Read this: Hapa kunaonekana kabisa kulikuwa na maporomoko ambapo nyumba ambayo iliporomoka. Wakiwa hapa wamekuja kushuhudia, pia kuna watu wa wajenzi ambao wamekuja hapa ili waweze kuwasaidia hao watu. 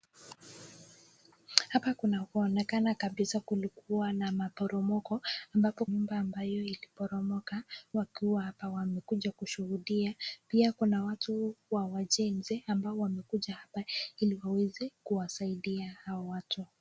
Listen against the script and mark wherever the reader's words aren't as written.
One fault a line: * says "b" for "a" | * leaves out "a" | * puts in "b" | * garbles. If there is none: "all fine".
all fine